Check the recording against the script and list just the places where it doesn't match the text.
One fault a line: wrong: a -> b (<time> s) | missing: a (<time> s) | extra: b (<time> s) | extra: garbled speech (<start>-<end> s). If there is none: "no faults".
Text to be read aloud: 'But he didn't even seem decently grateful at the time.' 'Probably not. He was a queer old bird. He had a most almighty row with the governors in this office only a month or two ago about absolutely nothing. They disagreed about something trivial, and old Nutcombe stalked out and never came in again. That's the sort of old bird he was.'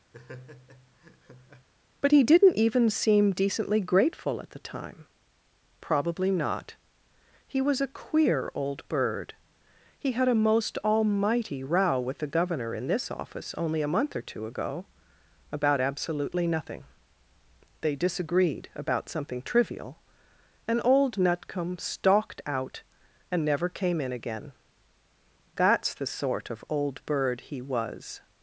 wrong: governors -> governor (12.3 s)